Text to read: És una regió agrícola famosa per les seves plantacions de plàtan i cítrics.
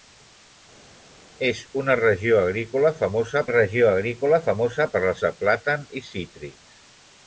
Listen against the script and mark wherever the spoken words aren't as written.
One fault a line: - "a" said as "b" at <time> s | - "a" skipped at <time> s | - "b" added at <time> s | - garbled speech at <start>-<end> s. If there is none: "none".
- "regió agrícola famosa" added at 3.5 s
- "seves plantacions" skipped at 5.2 s